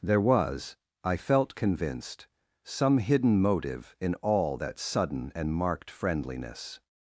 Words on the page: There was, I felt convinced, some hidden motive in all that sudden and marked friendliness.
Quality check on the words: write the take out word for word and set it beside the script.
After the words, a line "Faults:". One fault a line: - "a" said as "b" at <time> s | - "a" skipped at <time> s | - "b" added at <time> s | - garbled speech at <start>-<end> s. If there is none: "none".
There was, I felt convinced, some hidden motive in all that sudden and marked friendliness.
Faults:
none